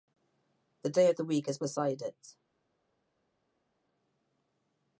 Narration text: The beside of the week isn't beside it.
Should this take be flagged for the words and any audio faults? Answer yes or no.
yes